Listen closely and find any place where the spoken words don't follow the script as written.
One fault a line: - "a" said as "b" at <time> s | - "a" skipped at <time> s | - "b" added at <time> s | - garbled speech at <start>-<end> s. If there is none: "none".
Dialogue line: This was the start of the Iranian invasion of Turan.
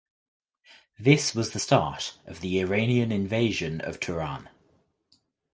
none